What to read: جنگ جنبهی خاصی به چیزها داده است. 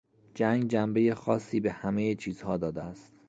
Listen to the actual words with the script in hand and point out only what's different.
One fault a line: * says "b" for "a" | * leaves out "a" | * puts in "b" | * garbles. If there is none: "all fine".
* puts in "همهی"